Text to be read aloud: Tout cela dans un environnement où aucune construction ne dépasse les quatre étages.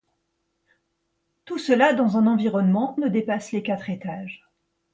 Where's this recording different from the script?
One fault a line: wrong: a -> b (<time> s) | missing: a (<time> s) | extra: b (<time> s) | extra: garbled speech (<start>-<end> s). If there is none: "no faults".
missing: où aucune construction (3.0 s)